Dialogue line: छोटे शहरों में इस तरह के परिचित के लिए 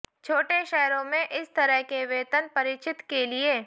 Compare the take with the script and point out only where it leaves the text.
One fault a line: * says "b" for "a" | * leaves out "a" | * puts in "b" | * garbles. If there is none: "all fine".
* puts in "वेतन"